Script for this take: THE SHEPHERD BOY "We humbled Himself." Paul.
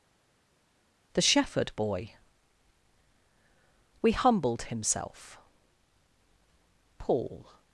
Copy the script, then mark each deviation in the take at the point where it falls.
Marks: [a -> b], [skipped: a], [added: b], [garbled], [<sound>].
THE SHEPHERD BOY "We humbled Himself." Paul.